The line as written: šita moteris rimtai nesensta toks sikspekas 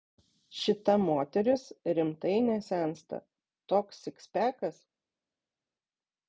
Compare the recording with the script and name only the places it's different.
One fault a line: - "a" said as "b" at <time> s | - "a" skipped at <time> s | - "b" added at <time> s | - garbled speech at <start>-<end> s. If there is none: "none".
none